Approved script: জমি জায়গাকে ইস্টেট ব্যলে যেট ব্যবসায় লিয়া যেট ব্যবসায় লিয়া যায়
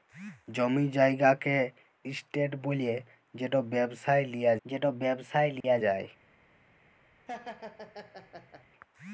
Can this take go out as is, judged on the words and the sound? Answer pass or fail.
fail